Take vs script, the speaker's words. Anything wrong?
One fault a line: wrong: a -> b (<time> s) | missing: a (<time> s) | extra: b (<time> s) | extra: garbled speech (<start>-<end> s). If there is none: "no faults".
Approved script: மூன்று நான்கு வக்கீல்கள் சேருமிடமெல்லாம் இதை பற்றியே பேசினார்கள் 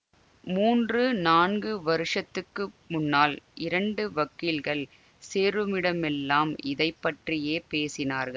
extra: வருஷத்துக்கு முன்னால் இரண்டு (1.8 s)